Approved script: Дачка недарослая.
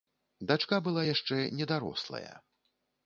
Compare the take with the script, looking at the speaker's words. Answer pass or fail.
fail